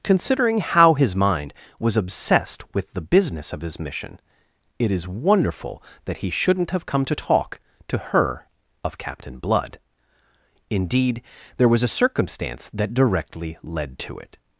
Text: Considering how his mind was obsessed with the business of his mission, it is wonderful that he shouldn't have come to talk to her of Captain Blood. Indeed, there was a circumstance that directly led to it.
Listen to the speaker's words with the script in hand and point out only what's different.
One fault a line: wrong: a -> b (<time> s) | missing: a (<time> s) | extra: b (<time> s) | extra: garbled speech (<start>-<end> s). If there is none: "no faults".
no faults